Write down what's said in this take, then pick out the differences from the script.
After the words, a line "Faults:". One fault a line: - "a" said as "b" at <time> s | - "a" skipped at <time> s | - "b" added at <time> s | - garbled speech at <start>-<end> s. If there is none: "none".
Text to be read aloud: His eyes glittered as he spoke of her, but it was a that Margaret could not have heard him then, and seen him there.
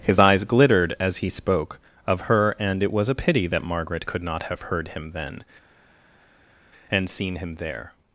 His eyes glittered as he spoke of her, and it was a pity that Margaret could not have heard him then, and seen him there.
Faults:
- "but" said as "and" at 2.6 s
- "pity" added at 3.2 s